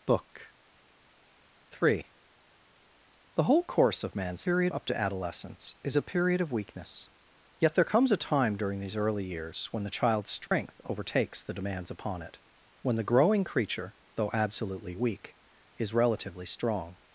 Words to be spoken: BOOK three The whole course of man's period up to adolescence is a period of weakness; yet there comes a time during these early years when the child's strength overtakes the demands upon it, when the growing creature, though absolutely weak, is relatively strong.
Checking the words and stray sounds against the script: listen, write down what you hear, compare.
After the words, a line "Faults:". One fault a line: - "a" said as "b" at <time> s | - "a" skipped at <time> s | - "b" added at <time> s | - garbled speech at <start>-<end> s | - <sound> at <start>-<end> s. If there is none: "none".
BOOK three The whole course of man's period up to adolescence is a period of weakness; yet there comes a time during these early years when the child's strength overtakes the demands upon it, when the growing creature, though absolutely weak, is relatively strong.
Faults:
- dropout at 10.5-10.5 s